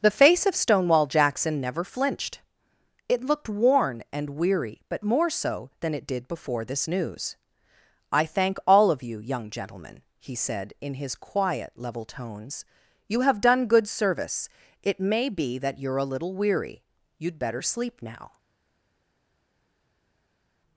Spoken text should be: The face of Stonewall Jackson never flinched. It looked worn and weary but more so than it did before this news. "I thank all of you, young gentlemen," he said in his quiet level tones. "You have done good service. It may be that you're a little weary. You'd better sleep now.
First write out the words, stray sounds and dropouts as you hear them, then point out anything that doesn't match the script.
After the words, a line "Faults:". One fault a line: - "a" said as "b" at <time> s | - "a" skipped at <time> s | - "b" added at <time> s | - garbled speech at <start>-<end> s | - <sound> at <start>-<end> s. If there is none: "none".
The face of Stonewall Jackson never flinched. It looked worn and weary but more so than it did before this news. "I thank all of you, young gentlemen," he said in his quiet level tones. "You have done good service. It may be that you're a little weary. You'd better sleep now.
Faults:
none